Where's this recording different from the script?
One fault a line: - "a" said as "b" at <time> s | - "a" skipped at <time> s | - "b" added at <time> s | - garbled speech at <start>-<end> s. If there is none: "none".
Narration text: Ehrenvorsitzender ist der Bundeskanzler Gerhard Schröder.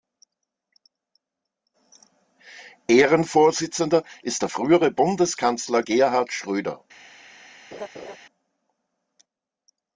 - "frühere" added at 4.5 s